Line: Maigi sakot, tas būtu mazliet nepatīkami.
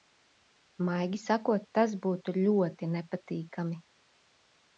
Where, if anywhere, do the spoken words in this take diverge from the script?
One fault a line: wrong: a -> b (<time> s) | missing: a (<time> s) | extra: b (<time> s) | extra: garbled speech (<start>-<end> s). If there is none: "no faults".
wrong: mazliet -> ļoti (2.4 s)